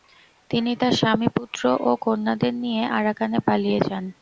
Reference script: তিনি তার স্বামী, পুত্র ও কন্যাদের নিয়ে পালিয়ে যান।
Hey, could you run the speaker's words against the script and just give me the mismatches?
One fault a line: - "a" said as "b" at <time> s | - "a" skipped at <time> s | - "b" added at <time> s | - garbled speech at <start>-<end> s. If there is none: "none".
- "আরাকানে" added at 3.0 s